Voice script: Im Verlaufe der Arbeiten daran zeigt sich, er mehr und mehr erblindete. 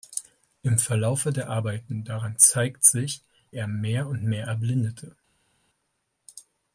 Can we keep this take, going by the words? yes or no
yes